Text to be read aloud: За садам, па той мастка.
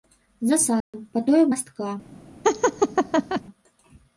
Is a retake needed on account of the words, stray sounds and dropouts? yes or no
yes